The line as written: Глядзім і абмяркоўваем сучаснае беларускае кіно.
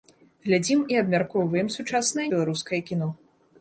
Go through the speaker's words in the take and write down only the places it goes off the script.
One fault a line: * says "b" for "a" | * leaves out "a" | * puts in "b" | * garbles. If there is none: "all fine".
all fine